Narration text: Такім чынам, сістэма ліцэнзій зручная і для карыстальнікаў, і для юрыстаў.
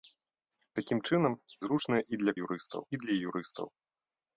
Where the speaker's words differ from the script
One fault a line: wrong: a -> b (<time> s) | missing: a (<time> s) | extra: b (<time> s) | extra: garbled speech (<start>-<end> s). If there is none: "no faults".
missing: сістэма ліцэнзій (1.3 s)
wrong: карыстальнікаў -> юрыстаў (2.4 s)